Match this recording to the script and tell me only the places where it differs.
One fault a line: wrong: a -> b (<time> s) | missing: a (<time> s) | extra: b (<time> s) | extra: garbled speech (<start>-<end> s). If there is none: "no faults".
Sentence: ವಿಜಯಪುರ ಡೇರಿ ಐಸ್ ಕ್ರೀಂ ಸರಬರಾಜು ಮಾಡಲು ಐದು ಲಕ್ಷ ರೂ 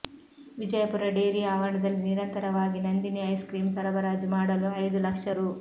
extra: ಆವರಣದಲ್ಲಿ ನಿರಂತರವಾಗಿ ನಂದಿನಿ (1.5 s)